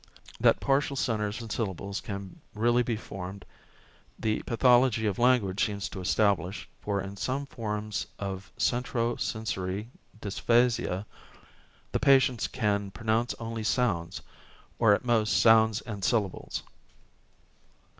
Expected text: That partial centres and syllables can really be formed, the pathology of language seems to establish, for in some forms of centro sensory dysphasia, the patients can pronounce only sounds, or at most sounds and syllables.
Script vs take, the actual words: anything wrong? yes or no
no